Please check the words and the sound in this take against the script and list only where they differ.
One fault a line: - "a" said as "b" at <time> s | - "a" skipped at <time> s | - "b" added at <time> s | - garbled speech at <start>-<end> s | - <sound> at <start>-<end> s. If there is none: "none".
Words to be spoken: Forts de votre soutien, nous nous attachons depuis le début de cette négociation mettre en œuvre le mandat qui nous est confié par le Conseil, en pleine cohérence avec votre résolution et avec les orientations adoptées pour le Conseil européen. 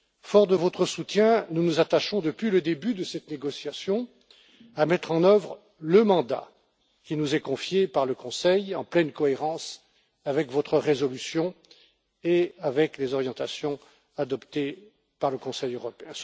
- "à" added at 4.7 s
- "pour" said as "par" at 15.2 s